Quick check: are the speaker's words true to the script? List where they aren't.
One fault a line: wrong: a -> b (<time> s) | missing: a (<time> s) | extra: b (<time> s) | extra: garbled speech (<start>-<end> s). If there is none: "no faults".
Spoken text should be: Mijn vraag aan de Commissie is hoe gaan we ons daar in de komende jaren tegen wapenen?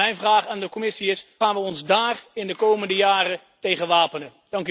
missing: hoe (1.2 s)